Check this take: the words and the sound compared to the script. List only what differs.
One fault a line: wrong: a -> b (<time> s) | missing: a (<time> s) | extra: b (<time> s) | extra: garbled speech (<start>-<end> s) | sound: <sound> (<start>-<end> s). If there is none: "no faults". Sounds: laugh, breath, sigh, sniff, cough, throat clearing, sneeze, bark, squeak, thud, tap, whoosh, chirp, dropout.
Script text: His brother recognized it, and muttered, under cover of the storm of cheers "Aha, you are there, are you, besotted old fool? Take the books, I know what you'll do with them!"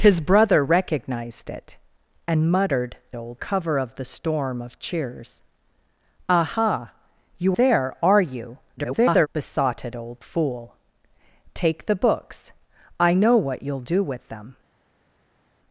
wrong: under -> old (3.2 s)
missing: are (7.6 s)
extra: garbled speech (8.8-9.3 s)